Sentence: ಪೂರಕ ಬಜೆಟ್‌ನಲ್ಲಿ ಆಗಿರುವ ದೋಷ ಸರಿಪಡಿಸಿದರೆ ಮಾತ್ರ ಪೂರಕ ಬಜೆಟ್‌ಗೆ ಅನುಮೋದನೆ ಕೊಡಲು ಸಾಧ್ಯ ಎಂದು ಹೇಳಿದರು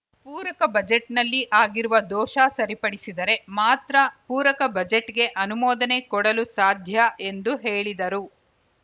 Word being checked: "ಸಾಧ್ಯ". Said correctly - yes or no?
yes